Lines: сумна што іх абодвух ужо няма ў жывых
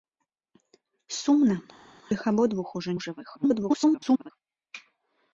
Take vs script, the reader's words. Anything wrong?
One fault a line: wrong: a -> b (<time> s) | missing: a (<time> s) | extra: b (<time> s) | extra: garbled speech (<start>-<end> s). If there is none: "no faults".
missing: што (1.6 s)
missing: няма (2.9 s)
extra: garbled speech (3.3-4.3 s)